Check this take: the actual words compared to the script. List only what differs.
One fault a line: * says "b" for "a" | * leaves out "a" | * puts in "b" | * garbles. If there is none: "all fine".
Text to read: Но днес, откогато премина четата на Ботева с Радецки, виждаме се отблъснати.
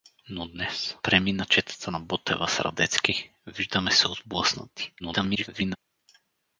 * leaves out "откогато"
* garbles